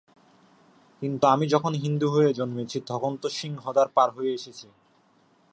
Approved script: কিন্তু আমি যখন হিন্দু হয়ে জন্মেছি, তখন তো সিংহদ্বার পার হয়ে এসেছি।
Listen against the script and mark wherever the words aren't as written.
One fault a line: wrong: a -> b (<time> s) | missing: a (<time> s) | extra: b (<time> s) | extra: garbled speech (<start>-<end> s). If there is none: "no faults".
no faults